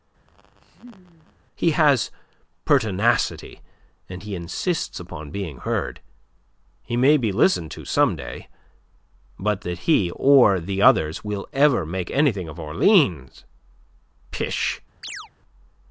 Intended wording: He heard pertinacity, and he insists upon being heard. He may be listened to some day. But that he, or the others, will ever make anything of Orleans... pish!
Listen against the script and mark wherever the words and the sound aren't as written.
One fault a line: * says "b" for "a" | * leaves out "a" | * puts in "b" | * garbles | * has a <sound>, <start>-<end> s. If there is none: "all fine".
* has a laugh, 0.3-1.4 s
* says "has" for "heard"
* has a chirp, 15.0-15.3 s